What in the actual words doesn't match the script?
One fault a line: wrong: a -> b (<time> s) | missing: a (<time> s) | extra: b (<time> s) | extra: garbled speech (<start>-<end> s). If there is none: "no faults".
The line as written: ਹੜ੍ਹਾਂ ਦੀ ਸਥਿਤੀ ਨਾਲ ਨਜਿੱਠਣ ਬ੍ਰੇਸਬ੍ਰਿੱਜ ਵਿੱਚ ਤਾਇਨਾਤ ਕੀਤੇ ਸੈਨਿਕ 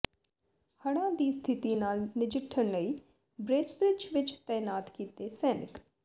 extra: ਲਈ (2.7 s)